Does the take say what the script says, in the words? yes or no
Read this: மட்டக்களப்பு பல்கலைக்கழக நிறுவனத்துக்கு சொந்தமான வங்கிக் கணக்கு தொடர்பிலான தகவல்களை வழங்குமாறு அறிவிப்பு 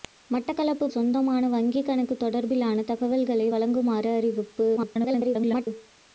no